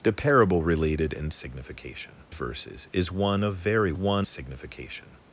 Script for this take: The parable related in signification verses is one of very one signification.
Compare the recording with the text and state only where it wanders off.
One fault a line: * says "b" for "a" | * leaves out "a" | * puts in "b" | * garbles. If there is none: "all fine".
all fine